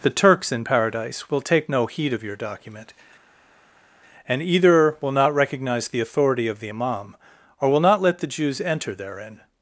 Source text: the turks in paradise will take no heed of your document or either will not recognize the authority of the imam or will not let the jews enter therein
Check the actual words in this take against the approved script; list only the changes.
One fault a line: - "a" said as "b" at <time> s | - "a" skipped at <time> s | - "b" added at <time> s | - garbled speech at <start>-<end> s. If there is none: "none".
- "or" said as "and" at 4.3 s